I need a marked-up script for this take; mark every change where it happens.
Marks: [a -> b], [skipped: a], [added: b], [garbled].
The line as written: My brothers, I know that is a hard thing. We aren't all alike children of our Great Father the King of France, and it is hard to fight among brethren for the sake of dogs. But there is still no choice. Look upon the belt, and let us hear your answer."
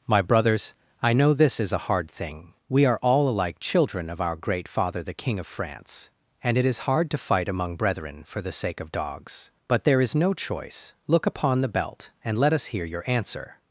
My brothers, I know [that -> this] is a hard thing. We [aren't -> are] all alike children of our Great Father the King of France, and it is hard to fight among brethren for the sake of dogs. But there is [skipped: still] no choice. Look upon the belt, and let us hear your answer."